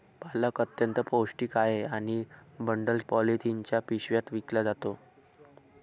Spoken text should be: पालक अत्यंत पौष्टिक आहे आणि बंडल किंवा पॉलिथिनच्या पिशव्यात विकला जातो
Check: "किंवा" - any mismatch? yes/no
yes